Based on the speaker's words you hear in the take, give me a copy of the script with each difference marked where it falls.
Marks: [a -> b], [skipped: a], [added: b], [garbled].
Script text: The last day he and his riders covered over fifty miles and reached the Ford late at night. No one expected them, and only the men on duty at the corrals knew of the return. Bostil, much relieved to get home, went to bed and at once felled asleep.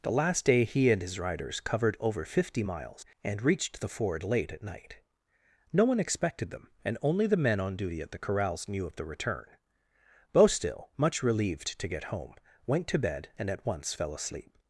The last day he and his riders covered over fifty miles and reached the Ford late at night. No one expected them, and only the men on duty at the corrals knew of the return. Bostil, much relieved to get home, went to bed and at once [felled -> fell] asleep.